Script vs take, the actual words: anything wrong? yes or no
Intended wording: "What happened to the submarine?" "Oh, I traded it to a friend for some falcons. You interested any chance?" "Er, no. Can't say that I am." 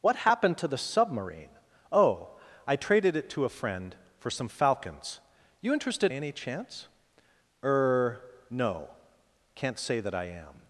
no